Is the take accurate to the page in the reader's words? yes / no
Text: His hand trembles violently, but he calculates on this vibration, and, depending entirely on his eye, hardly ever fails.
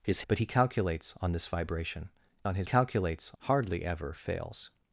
no